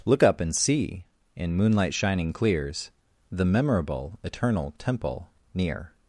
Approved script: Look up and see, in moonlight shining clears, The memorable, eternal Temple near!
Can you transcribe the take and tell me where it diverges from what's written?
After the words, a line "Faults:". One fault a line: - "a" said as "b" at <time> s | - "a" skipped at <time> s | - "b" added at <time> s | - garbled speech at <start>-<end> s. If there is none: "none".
Look up and see, in moonlight shining clears, The memorable, eternal Temple near!
Faults:
none